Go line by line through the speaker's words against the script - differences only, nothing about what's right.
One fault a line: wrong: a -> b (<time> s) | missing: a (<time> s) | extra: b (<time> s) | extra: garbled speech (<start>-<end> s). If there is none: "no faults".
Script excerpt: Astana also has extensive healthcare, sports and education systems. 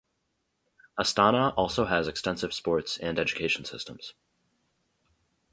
missing: healthcare (2.5 s)